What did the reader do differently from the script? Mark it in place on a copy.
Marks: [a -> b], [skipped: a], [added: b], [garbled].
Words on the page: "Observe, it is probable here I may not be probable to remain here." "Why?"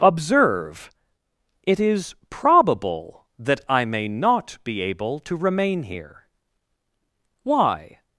"Observe, it is probable [here -> that] I may not be [probable -> able] to remain here." "Why?"